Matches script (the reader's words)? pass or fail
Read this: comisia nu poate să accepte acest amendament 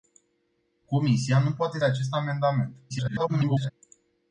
fail